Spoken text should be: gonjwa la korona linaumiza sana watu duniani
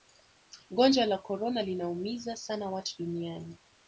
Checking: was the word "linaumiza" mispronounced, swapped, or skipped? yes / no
no